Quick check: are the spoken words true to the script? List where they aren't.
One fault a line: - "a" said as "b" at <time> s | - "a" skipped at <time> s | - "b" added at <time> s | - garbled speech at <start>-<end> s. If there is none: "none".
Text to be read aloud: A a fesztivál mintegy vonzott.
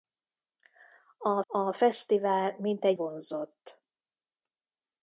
none